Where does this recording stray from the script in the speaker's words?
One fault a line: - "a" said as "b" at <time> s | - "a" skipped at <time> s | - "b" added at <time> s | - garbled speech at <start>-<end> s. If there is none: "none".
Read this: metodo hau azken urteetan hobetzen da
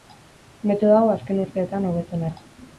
none